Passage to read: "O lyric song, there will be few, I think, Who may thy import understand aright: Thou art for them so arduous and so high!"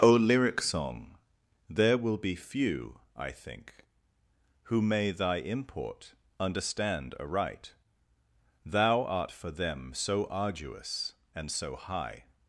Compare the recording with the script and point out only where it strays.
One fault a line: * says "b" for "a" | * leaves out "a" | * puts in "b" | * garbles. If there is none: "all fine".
all fine